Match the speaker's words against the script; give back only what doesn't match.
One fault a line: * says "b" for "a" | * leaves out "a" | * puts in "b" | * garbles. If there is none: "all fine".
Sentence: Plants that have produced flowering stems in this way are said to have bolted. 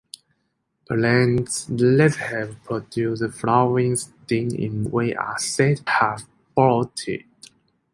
* leaves out "this"
* leaves out "to"